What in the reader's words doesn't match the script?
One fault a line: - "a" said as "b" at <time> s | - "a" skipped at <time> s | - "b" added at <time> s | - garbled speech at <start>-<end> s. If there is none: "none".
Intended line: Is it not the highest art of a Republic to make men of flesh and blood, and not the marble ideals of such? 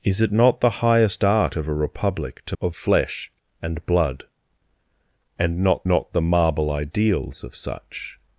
- "make men" skipped at 2.5 s
- "not" added at 5.9 s